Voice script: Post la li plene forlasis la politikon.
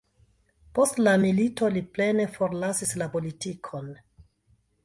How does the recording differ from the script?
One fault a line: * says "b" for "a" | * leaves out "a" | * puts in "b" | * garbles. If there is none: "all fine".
* puts in "milito"